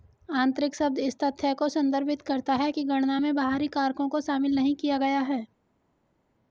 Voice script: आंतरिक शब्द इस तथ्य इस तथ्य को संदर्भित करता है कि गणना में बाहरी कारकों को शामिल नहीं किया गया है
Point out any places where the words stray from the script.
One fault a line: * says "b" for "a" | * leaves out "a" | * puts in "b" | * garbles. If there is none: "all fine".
* leaves out "इस तथ्य"